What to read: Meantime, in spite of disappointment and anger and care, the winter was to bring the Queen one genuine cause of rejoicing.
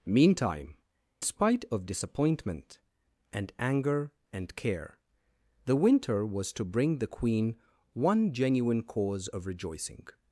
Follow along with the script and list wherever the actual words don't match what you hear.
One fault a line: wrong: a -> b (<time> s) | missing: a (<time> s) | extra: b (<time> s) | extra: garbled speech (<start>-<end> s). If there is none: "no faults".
missing: in (0.8 s)